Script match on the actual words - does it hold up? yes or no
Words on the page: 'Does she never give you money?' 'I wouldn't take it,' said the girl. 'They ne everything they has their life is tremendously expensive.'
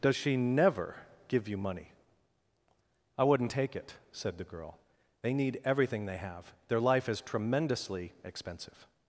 no